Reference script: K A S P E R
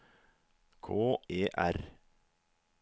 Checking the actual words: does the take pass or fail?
fail